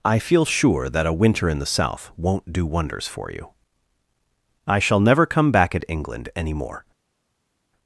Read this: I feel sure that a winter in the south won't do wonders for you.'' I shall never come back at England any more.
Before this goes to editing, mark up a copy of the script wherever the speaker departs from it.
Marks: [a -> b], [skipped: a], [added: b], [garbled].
I feel sure that a winter in the south won't do wonders for you.'' I shall never come back at England any more.